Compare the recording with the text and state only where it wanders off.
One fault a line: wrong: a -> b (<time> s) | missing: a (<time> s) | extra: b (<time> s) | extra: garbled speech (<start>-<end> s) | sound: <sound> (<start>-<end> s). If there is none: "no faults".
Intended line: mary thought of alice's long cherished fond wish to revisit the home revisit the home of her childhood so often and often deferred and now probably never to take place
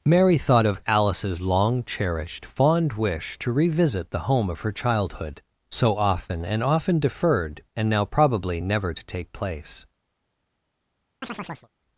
missing: revisit the home (4.5 s)
sound: chirp (11.2-11.7 s)